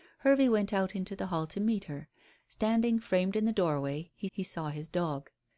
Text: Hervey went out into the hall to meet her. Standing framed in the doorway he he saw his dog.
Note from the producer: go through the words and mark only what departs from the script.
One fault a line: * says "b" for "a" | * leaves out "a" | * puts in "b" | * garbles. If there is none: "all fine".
all fine